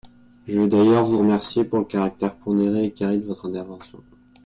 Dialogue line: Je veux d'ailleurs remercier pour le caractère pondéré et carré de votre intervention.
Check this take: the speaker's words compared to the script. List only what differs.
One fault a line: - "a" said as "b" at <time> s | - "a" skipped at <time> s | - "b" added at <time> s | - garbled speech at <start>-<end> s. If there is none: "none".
- "vous" added at 1.1 s